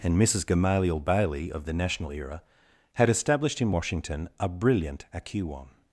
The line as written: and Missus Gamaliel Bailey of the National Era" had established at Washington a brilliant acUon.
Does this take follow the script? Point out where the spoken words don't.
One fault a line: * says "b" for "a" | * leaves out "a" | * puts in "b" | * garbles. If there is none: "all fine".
* says "in" for "at"